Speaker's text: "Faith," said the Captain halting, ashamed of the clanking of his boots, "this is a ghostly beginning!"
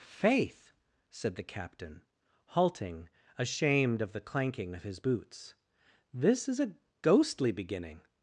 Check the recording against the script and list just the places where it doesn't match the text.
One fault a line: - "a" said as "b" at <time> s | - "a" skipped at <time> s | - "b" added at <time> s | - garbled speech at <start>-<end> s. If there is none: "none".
none